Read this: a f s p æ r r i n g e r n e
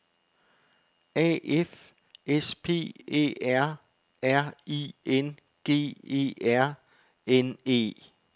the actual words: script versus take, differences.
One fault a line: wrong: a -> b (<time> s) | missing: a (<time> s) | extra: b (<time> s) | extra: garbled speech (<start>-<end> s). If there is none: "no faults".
no faults